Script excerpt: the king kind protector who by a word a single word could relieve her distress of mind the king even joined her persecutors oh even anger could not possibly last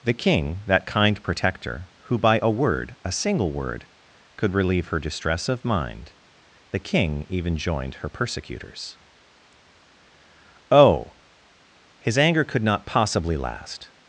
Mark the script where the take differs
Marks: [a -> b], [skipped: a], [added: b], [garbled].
the king [added: that] kind protector who by a word a single word could relieve her distress of mind the king even joined her persecutors oh [even -> his] anger could not possibly last